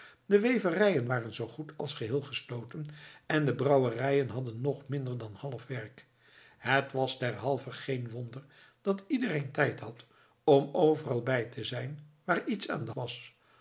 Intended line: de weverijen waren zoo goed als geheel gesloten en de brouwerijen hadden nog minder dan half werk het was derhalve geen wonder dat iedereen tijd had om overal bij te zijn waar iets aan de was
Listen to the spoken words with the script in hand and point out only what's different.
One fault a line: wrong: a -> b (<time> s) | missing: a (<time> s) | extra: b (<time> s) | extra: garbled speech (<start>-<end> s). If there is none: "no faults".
no faults